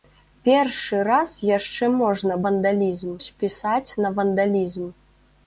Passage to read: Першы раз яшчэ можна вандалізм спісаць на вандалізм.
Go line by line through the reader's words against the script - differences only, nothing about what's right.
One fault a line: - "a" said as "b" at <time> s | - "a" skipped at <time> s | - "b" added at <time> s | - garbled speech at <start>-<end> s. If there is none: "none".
none